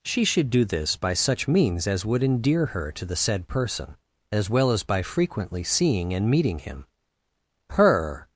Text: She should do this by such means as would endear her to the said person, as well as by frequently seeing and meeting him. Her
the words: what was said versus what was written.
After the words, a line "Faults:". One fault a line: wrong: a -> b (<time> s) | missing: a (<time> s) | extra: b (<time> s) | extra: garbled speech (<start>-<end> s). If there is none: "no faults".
She should do this by such means as would endear her to the said person, as well as by frequently seeing and meeting him. Her
Faults:
no faults